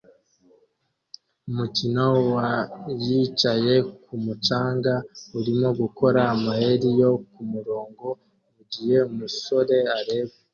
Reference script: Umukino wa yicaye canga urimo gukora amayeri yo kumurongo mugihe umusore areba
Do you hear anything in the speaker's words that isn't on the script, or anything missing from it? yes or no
yes